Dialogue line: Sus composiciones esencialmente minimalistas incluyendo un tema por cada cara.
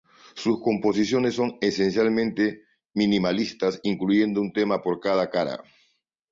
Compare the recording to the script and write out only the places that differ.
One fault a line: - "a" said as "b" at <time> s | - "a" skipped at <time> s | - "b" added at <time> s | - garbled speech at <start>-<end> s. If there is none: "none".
- "son" added at 1.4 s